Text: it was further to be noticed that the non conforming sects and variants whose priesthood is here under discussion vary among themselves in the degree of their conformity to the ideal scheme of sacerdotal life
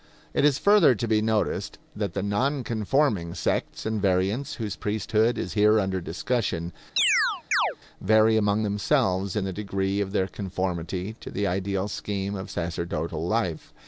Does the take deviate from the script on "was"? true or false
true